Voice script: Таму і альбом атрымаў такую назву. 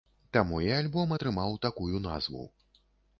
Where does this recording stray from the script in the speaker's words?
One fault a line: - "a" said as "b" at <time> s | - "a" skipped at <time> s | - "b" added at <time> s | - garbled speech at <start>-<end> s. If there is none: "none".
none